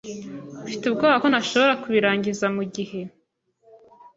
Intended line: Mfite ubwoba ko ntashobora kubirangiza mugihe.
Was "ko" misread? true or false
false